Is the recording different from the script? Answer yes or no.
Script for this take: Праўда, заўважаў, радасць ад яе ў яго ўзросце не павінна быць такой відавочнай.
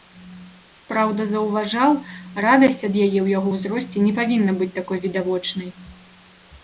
no